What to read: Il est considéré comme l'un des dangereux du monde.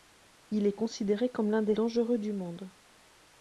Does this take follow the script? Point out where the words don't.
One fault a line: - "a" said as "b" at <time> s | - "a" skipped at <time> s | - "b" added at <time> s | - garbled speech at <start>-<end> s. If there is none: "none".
none